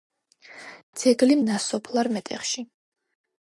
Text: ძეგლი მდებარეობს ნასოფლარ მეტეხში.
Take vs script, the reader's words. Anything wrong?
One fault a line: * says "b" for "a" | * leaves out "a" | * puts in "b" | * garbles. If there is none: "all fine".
* leaves out "მდებარეობს"